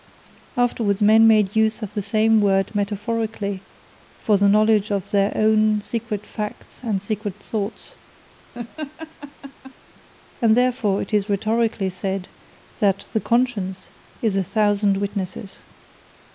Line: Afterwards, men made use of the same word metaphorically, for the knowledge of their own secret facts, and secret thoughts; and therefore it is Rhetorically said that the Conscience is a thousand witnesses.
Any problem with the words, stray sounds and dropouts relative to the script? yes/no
yes